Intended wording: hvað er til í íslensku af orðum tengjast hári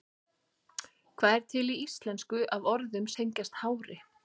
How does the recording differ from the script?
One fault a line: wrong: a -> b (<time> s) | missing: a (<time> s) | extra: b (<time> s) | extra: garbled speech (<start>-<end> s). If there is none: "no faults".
no faults